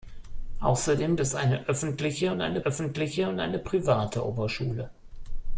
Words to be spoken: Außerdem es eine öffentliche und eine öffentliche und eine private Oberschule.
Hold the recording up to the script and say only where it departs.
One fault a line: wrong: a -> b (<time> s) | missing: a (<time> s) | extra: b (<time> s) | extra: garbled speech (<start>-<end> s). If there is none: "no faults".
no faults